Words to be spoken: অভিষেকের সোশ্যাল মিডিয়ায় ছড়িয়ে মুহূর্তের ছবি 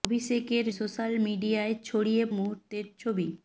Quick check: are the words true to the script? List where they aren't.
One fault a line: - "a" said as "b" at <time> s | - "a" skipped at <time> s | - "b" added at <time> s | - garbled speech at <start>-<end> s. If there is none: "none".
none